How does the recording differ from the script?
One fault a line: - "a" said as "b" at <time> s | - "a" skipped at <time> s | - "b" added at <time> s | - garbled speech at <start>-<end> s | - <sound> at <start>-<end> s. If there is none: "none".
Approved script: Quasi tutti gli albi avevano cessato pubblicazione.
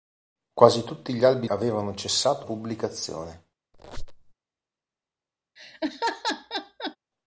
- squeak at 3.7-4.3 s
- laugh at 5.6-7.0 s